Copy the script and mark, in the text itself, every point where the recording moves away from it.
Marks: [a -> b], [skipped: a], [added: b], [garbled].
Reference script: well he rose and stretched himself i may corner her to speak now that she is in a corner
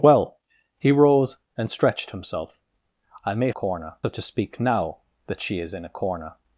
well he rose and stretched himself i may corner her to speak now that she is in a corner